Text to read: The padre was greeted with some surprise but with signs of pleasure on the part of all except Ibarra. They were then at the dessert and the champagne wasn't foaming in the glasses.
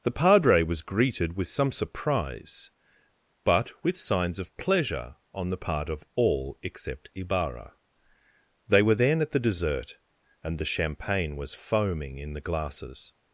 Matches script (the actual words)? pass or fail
fail